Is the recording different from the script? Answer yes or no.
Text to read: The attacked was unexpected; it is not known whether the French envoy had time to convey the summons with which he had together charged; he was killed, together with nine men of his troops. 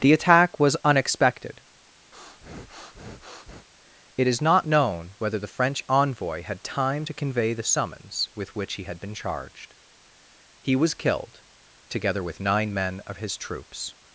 yes